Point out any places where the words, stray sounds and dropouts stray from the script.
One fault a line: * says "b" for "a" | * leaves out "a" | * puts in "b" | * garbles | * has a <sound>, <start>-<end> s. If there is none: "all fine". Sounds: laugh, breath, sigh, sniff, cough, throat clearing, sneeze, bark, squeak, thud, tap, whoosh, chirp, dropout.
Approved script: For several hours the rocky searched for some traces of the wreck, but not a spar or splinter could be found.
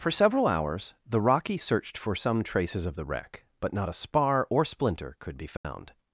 * has a dropout, 5.6-5.6 s